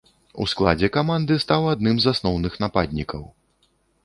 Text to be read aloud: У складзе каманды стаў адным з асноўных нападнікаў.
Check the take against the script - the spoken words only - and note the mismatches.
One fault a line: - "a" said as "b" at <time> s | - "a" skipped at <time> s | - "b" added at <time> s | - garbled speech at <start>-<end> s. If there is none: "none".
none